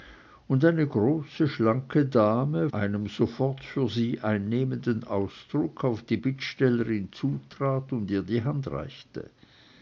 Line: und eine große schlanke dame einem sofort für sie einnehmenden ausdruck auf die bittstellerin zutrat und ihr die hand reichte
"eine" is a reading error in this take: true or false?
false